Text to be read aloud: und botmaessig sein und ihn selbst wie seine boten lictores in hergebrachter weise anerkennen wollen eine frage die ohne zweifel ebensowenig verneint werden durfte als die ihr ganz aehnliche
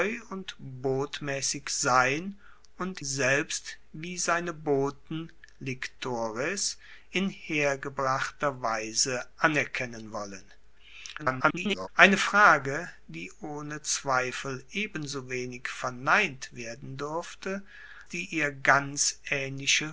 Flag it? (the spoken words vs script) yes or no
yes